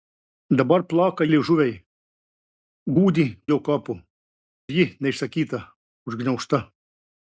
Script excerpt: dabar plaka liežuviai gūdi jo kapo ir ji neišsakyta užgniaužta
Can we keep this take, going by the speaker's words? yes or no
yes